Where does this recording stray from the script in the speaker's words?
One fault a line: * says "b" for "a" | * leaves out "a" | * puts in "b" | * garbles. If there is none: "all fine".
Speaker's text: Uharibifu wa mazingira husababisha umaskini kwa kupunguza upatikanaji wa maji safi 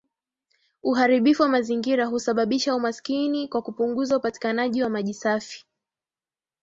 all fine